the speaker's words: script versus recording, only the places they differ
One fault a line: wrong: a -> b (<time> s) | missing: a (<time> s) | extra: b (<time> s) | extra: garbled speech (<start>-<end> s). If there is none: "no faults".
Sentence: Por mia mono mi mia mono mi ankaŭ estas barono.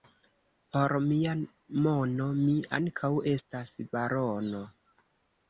missing: mia mono mi (2.5 s)